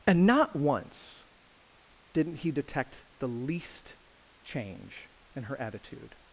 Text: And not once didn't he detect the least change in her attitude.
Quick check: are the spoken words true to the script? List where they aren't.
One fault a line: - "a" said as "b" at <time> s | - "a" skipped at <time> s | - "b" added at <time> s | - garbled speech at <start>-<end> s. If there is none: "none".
none